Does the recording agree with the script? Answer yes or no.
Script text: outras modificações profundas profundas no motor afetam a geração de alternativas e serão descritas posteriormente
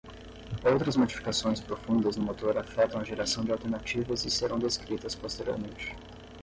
no